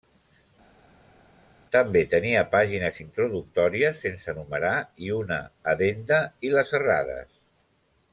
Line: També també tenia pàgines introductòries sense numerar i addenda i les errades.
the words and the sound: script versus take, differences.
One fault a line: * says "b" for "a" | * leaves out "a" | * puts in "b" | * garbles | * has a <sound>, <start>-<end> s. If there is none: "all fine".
* leaves out "també"
* puts in "una"